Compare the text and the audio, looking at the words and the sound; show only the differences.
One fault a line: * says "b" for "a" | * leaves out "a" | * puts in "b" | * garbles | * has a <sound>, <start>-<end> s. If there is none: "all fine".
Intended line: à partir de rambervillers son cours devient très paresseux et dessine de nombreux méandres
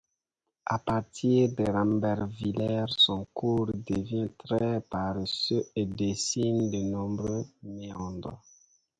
all fine